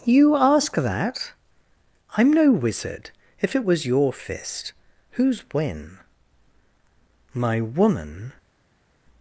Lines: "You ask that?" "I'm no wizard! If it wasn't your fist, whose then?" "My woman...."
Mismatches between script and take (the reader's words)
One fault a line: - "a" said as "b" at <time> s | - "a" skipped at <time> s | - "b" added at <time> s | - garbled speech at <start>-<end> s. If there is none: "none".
- "wasn't" said as "was" at 3.6 s
- "then" said as "when" at 5.5 s